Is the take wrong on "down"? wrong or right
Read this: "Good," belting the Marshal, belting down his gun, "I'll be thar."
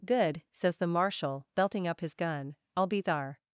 wrong